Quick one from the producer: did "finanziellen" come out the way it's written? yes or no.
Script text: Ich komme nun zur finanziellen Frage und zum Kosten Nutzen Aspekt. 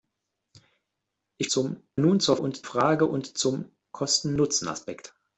no